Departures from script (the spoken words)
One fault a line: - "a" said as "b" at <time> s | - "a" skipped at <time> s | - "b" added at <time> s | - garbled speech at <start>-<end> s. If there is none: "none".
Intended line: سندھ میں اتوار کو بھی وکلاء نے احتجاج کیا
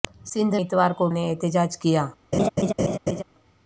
- "میں" skipped at 0.6 s
- "بھی وکلاء" skipped at 1.1 s